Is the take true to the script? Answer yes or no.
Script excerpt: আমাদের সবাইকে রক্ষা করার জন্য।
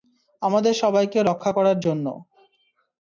yes